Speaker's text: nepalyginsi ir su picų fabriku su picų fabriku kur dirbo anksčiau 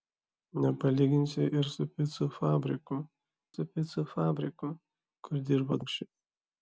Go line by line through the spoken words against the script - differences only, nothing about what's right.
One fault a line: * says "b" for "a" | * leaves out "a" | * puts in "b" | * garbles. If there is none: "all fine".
all fine